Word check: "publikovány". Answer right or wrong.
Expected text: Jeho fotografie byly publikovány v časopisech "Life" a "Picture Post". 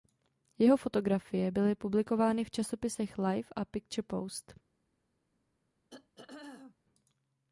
right